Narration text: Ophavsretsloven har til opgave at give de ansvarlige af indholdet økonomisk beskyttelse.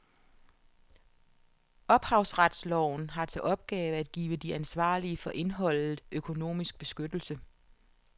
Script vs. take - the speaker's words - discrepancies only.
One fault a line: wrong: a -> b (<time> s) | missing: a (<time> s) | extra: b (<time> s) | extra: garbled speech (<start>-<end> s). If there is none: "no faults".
wrong: af -> for (5.2 s)